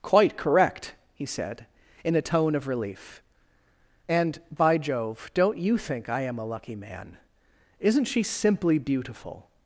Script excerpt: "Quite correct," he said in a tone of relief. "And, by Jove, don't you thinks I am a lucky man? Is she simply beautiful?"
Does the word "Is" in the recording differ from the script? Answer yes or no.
yes